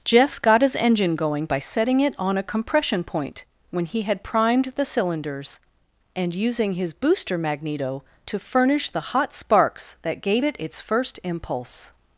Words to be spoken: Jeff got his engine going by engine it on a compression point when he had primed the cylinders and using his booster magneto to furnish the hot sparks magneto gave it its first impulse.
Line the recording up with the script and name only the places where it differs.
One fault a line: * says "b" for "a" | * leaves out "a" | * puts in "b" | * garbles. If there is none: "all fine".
* says "setting" for "engine"
* says "that" for "magneto"